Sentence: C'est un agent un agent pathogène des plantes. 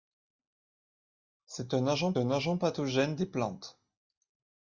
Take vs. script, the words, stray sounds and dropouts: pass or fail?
pass